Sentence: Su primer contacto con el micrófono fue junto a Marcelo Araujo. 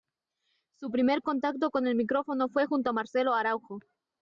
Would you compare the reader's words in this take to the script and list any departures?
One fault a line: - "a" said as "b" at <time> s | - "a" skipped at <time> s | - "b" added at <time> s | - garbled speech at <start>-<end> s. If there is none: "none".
none